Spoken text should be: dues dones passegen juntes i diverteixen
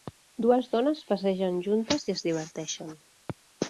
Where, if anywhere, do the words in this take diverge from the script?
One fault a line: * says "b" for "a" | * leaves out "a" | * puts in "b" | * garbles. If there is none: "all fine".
* puts in "es"